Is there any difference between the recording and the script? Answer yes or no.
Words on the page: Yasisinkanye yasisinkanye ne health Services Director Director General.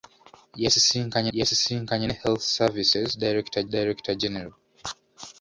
no